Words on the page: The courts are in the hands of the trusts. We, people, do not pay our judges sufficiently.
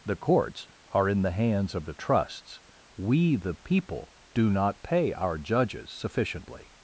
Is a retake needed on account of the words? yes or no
yes